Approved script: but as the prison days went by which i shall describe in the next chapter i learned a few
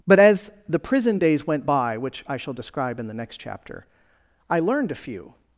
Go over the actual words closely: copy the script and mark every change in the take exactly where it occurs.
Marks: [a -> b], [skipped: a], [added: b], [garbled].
but as the prison days went by which i shall describe in the next chapter i learned a few